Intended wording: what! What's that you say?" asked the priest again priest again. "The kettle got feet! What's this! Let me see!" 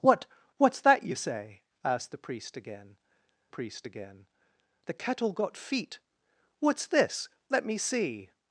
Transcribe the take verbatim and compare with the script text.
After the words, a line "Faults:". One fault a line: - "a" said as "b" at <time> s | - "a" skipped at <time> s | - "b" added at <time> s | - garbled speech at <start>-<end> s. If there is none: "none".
what! What's that you say?" asked the priest again priest again. "The kettle got feet! What's this! Let me see!"
Faults:
none